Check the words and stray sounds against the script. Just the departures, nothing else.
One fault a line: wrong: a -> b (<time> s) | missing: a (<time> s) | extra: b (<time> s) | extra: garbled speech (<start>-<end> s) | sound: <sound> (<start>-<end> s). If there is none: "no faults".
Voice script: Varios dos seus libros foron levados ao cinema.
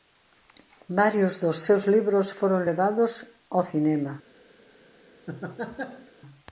sound: laugh (5.3-6.1 s)